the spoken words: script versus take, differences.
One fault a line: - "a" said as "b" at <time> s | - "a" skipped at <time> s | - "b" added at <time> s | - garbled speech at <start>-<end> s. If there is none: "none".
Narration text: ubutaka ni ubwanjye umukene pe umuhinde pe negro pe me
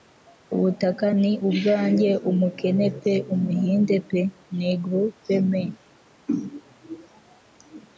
none